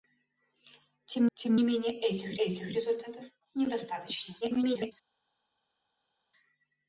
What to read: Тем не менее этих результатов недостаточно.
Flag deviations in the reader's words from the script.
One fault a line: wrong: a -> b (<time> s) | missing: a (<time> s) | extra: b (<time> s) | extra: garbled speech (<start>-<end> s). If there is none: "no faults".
extra: тем (1.3 s)
extra: этих (2.4 s)
extra: garbled speech (4.4-4.9 s)